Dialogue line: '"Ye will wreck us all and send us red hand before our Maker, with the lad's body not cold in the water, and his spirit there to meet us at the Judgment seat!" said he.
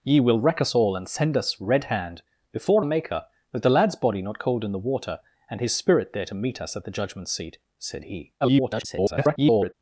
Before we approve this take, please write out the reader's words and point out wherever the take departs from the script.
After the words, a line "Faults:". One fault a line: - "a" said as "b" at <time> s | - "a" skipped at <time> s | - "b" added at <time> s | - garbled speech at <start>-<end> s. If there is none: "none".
'"Ye will wreck us all and send us red hand before Maker, with the lad's body not cold in the water, and his spirit there to meet us at the Judgment seat!" said he. [garbled]
Faults:
- "our" skipped at 2.9 s
- garbled speech at 8.4-9.7 s